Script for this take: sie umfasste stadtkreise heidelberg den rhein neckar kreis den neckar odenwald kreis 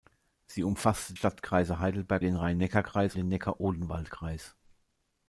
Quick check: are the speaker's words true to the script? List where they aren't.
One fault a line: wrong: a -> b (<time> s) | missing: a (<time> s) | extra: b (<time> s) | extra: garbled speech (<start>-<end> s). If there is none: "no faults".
no faults